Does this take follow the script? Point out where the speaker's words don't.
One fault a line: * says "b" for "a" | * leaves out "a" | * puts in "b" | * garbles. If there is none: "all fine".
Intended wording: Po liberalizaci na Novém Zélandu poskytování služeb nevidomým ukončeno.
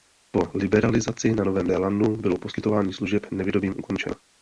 * puts in "bylo"